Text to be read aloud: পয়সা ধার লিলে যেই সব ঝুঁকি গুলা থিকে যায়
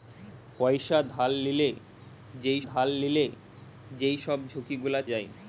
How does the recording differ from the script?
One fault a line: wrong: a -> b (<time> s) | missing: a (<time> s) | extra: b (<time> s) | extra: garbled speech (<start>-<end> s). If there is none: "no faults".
extra: ধার লিলে যেই (2.7 s)
missing: থিকে (5.0 s)